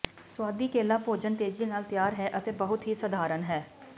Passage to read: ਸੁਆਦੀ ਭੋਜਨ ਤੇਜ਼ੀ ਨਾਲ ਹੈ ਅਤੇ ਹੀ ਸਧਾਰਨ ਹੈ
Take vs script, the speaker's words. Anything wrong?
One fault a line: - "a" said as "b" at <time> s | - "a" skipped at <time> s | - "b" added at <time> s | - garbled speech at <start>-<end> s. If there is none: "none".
- "ਕੇਲਾ" added at 0.7 s
- "ਤਿਆਰ" added at 1.8 s
- "ਬਹੁਤ" added at 2.5 s